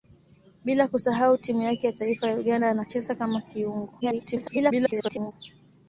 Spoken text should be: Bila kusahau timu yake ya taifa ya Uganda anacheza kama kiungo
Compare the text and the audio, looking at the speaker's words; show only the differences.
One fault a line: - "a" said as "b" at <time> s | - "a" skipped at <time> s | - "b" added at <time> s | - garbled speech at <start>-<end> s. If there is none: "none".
- garbled speech at 4.0-5.3 s